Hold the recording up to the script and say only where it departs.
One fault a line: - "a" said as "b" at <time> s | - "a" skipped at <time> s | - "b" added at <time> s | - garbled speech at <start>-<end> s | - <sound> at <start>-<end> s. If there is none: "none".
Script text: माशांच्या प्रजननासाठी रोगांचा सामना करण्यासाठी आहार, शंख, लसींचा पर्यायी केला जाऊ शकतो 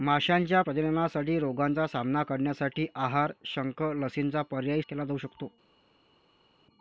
none